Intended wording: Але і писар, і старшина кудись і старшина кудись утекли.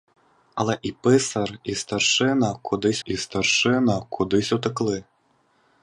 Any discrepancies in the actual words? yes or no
no